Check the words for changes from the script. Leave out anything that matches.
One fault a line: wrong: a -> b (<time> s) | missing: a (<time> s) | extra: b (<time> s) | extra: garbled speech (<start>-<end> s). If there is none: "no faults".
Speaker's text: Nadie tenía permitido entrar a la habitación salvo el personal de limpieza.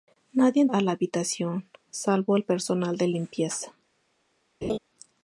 missing: tenía permitido entrar (0.7 s)